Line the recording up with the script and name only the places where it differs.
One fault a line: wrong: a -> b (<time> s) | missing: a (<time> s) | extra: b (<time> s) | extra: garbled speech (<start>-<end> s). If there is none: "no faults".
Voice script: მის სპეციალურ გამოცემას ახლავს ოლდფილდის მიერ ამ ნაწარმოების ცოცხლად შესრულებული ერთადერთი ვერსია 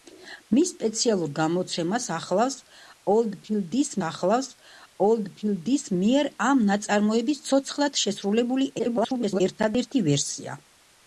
extra: ახლავს ოლდფილდის (4.1 s)
extra: garbled speech (8.8-9.4 s)